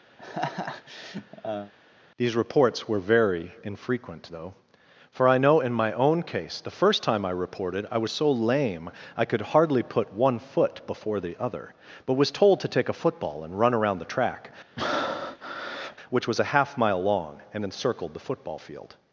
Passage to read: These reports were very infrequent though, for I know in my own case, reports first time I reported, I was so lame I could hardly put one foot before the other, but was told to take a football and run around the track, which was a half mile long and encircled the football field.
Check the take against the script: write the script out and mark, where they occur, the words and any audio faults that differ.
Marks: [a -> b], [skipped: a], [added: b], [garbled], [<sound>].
[laugh] These reports were very infrequent though, for I know in my own case, [reports -> the] first time I reported, I was so lame I could hardly put one foot before the other, but was told to take a football and run around the track, [breath] which was a half mile long and encircled the football field.